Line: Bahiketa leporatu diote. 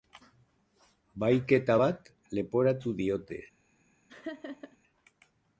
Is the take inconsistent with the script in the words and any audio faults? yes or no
yes